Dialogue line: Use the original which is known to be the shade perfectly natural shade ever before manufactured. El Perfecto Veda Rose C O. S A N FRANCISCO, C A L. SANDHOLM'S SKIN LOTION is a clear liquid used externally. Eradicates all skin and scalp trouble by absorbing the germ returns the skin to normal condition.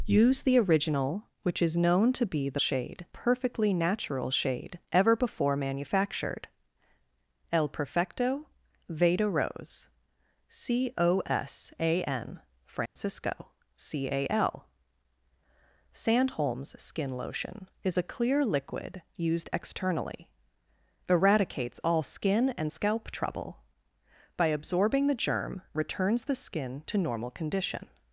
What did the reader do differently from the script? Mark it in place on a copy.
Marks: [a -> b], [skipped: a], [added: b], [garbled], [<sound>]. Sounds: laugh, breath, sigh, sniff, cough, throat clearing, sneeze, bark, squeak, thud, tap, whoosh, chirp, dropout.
Use the original which is known to be the shade perfectly natural shade ever before manufactured. El Perfecto Veda Rose C O. S A N FRANCISCO, [dropout] C A L. SANDHOLM'S SKIN LOTION is a clear liquid used externally. Eradicates all skin and scalp trouble by absorbing the germ returns the skin to normal condition.